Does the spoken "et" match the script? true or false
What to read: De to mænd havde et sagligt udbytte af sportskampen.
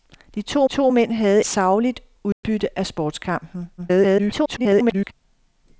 false